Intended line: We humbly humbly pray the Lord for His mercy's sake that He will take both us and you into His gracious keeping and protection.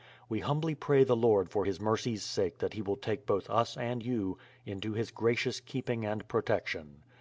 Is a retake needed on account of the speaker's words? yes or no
yes